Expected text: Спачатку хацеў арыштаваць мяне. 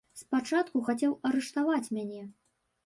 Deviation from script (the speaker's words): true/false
false